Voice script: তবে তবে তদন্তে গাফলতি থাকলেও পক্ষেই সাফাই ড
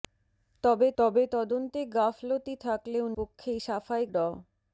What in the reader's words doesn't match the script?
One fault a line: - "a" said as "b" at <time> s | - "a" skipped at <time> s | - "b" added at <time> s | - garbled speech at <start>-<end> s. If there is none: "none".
none